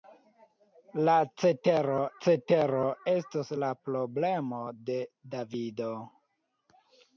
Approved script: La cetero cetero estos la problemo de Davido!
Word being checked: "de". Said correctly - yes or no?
yes